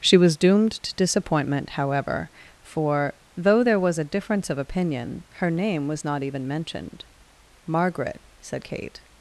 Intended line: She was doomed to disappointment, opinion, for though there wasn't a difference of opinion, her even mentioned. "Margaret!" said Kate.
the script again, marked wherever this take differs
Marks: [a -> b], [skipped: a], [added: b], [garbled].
She was doomed to disappointment, [opinion, -> however] for though there [wasn't -> was] a difference of opinion, her [added: name was not] even mentioned. "Margaret!" said Kate.